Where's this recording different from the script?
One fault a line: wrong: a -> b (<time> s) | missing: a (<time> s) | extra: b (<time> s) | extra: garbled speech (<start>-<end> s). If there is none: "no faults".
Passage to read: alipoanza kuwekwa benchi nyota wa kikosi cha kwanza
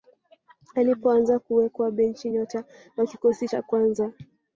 no faults